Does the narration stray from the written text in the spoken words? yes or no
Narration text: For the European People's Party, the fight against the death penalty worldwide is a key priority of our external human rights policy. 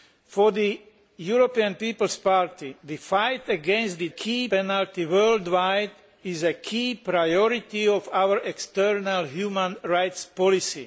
yes